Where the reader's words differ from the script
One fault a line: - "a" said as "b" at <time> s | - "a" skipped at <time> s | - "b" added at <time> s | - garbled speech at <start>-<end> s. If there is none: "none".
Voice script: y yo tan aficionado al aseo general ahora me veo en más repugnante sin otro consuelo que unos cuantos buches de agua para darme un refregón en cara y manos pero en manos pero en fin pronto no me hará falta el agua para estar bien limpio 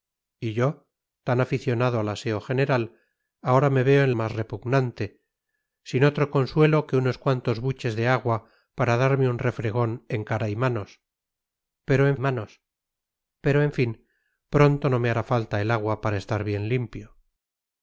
none